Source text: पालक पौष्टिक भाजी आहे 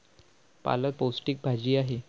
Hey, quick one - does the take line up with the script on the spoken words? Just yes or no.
yes